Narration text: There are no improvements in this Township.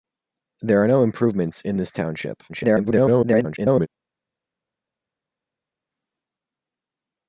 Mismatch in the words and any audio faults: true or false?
true